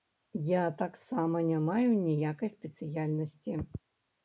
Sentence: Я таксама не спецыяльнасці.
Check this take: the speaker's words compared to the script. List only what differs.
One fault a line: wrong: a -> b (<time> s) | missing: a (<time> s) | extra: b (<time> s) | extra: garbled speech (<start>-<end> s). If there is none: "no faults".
extra: маю ніякай (1.7 s)